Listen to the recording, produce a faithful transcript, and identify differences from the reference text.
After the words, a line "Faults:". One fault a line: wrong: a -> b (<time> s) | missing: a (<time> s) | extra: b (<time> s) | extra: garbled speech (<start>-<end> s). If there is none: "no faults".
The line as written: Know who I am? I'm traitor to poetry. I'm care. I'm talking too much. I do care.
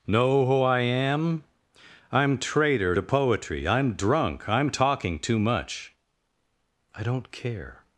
Know who I am? I'm traitor to poetry. I'm drunk. I'm talking too much. I don't care.
Faults:
wrong: care -> drunk (3.9 s)
wrong: do -> don't (7.0 s)